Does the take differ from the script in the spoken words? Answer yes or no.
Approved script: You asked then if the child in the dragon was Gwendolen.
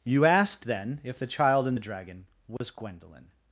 no